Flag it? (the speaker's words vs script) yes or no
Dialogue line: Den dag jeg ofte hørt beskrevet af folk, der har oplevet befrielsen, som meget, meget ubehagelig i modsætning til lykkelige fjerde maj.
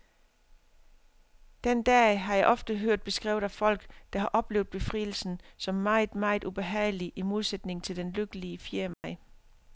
yes